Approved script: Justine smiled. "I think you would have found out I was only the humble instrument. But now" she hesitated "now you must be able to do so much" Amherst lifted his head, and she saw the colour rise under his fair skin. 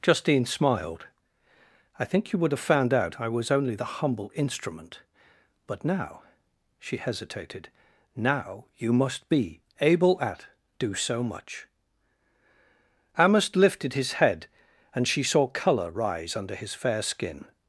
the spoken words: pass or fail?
fail